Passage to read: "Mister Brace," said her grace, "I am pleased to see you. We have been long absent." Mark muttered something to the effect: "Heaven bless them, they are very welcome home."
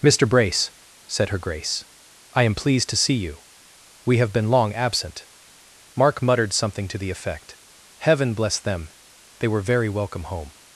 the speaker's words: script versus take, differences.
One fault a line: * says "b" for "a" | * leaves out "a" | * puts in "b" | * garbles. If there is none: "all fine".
* says "were" for "are"